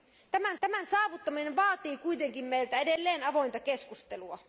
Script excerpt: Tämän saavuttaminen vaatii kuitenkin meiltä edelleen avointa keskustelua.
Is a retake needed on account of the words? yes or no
yes